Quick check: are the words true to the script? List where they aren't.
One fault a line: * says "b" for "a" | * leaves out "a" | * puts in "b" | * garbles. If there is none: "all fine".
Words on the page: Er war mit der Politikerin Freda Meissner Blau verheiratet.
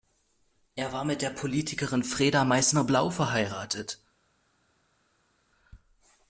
all fine